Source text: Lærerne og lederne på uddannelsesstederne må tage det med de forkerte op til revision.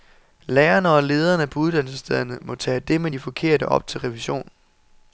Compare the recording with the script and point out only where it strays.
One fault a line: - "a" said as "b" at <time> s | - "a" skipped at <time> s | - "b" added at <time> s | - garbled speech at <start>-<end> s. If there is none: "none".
none